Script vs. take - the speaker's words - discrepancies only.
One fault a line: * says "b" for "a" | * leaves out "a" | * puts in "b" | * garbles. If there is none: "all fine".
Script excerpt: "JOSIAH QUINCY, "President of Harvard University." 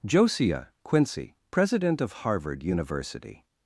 all fine